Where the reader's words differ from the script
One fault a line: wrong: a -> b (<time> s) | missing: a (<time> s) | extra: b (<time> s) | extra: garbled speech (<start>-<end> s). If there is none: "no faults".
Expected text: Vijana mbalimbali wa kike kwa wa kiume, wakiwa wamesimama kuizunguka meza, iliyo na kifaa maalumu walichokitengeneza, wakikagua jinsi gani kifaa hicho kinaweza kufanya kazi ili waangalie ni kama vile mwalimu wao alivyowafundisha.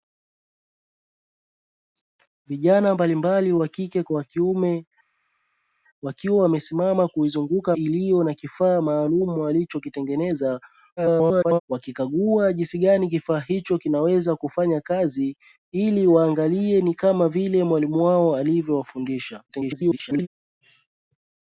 missing: meza (7.8 s)
extra: garbled speech (11.0-11.6 s)
extra: garbled speech (19.5-20.3 s)